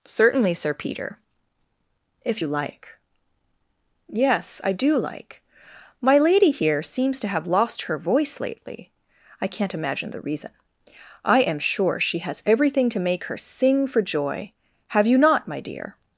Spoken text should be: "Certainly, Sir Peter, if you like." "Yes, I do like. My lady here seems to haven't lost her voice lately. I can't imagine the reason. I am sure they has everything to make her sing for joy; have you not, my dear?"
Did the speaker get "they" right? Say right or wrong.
wrong